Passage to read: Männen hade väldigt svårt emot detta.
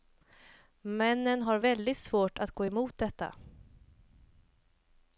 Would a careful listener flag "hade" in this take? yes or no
yes